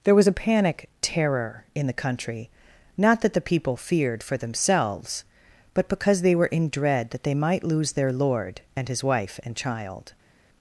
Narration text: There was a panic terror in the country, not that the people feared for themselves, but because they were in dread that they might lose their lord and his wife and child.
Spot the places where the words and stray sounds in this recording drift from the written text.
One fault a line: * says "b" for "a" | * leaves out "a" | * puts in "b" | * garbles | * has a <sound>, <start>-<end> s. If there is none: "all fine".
all fine